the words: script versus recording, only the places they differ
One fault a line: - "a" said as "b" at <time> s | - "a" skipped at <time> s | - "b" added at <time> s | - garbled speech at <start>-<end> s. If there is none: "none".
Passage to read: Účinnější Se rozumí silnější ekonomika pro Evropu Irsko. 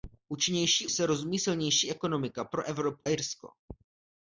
none